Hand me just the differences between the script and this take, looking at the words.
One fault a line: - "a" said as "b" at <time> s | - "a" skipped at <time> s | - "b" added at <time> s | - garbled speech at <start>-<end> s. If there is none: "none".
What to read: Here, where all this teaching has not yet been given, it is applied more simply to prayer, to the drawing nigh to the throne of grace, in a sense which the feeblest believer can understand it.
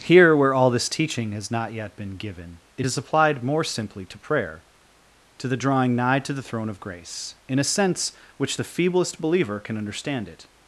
none